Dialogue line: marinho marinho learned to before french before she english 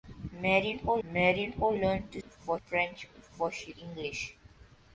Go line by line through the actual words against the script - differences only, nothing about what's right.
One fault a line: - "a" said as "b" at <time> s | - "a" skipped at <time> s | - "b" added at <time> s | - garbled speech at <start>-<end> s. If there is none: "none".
none